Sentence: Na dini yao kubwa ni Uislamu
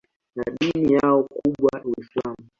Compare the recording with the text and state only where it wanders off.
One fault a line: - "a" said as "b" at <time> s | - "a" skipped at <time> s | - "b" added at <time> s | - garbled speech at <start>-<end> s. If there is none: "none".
- "ni" skipped at 1.8 s